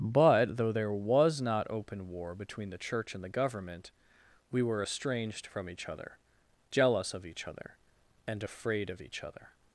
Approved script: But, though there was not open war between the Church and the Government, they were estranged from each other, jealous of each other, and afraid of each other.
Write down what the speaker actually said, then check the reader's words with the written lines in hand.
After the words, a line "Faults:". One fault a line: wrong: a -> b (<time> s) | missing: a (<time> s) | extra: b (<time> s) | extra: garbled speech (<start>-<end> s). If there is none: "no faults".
But, though there was not open war between the Church and the Government, we were estranged from each other, jealous of each other, and afraid of each other.
Faults:
wrong: they -> we (4.5 s)